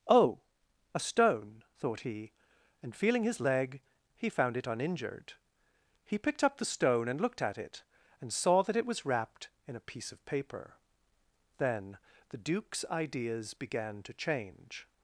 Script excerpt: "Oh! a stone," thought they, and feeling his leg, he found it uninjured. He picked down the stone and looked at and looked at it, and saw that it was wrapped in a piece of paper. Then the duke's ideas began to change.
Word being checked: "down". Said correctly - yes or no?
no